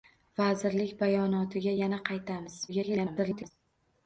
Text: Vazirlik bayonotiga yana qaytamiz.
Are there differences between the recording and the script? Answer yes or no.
yes